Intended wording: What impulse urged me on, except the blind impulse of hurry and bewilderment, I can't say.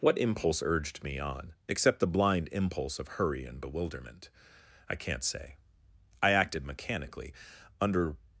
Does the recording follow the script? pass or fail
fail